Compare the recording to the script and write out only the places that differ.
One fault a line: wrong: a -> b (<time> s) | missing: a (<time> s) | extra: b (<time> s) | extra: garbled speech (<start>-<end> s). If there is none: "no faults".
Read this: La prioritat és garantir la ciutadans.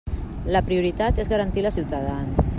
no faults